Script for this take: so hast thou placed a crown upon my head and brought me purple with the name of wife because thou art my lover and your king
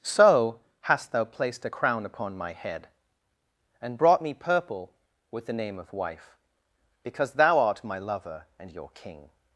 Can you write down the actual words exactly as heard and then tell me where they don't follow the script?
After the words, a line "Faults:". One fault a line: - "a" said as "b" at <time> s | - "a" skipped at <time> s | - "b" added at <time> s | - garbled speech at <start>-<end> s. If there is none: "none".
so hast thou placed a crown upon my head and brought me purple with the name of wife because thou art my lover and your king
Faults:
none